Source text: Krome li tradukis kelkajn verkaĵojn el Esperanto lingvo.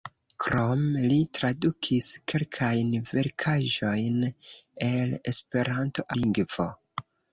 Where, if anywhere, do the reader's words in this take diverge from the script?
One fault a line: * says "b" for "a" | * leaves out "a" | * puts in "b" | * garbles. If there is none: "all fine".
all fine